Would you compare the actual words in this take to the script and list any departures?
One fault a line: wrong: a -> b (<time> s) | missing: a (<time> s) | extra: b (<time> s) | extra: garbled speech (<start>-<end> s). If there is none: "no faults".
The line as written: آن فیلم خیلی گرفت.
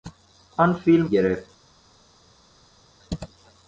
missing: خیلی (1.1 s)